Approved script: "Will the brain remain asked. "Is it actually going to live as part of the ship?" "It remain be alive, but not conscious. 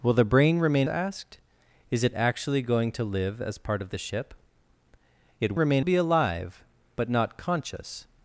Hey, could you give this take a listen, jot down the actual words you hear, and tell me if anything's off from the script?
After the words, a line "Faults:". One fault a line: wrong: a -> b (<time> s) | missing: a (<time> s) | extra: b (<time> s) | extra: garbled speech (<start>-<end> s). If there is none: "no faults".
"Will the brain remain asked. "Is it actually going to live as part of the ship?" "It remain be alive, but not conscious.
Faults:
no faults